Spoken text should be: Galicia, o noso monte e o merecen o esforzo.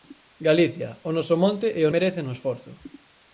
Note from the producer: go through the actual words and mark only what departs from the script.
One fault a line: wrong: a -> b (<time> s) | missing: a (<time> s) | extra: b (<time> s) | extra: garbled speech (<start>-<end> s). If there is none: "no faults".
no faults